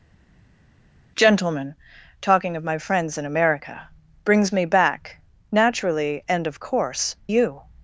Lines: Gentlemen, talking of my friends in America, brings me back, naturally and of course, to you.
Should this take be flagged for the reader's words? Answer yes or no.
yes